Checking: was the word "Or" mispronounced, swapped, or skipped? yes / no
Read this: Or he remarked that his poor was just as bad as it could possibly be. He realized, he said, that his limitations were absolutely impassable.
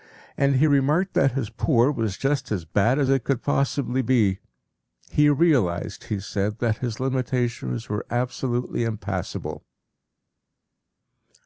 yes